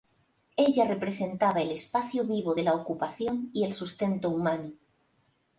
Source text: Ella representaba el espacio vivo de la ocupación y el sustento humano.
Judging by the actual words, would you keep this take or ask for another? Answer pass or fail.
pass